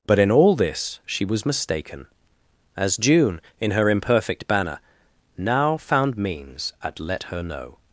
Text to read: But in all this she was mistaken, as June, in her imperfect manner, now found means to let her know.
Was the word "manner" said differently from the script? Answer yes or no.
yes